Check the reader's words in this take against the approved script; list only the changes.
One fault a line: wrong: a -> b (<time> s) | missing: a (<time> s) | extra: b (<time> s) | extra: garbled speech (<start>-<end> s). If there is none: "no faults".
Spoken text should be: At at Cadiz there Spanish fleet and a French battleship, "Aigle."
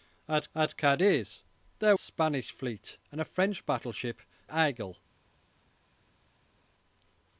no faults